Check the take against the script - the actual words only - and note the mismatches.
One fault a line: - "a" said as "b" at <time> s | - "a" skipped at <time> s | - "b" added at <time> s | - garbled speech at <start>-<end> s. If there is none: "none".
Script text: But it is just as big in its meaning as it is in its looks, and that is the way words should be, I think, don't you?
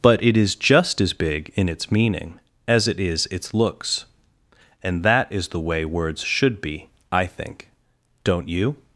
- "in" skipped at 3.3 s